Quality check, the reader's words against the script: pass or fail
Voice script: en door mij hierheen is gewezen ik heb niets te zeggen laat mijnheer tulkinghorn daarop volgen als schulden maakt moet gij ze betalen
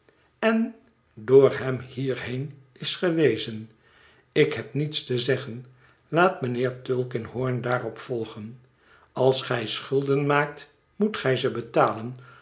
fail